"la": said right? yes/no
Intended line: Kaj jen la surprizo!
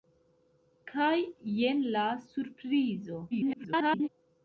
yes